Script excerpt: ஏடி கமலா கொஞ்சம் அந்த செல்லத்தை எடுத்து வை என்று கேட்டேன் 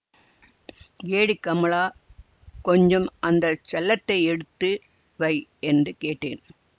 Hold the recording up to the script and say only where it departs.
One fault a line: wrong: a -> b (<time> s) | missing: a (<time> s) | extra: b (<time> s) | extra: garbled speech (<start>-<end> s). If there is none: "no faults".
no faults